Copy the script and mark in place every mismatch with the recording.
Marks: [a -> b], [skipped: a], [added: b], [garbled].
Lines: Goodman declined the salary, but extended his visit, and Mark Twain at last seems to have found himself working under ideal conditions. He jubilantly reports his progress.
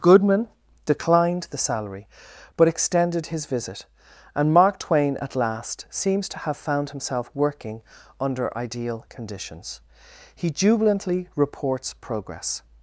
Goodman declined the salary, but extended his visit, and Mark Twain at last seems to have found himself working under ideal conditions. He jubilantly reports [skipped: his] progress.